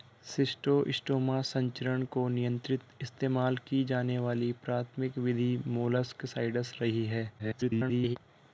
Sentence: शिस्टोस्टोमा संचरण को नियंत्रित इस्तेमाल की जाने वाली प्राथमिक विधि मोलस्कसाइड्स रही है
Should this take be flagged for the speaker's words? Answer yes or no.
yes